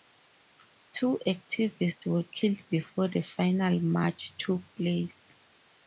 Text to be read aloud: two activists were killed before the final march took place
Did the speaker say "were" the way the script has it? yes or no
yes